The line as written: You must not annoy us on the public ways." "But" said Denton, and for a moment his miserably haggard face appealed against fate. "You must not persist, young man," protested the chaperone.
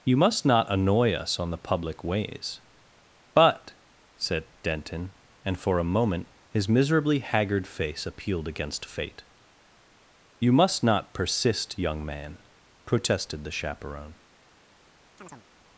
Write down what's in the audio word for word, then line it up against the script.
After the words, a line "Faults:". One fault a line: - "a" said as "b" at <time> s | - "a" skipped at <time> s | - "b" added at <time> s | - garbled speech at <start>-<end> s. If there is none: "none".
You must not annoy us on the public ways." "But" said Denton, and for a moment his miserably haggard face appealed against fate. "You must not persist, young man," protested the chaperone.
Faults:
none